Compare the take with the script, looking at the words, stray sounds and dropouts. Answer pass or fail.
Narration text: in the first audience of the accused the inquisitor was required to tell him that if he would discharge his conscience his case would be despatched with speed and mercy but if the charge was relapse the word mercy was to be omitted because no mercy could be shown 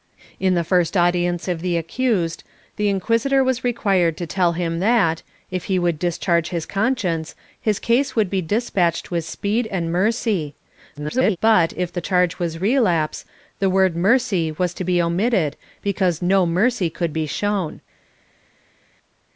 fail